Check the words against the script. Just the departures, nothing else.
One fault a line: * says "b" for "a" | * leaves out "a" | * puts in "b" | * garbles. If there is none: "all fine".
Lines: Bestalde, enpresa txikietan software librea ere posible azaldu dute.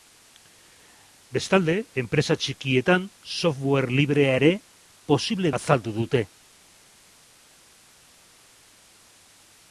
all fine